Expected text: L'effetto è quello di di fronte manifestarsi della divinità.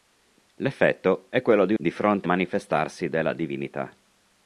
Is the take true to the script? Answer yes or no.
yes